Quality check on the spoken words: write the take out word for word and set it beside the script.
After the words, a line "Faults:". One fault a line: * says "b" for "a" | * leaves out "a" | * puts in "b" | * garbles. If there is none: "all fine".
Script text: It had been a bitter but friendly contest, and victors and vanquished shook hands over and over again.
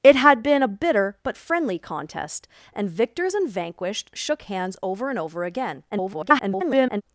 It had been a bitter but friendly contest, and victors and vanquished shook hands over and over again. [garbled]
Faults:
* garbles